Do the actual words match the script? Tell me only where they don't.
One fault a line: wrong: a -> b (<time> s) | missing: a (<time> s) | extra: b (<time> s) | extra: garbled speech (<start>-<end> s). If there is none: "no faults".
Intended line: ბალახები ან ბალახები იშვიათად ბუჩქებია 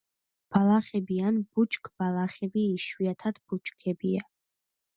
wrong: ბალახები -> ბუჩქბალახები (1.6 s)